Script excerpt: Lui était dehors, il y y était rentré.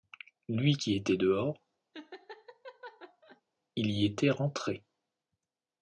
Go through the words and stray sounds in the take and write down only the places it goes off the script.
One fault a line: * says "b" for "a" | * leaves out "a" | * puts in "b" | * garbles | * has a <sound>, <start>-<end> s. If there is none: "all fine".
* puts in "qui"
* has a laugh, 1.9-3.4 s
* leaves out "y"